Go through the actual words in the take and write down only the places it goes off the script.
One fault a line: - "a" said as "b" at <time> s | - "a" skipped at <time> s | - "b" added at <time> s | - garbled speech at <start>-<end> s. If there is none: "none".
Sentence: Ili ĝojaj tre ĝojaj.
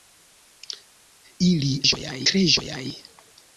none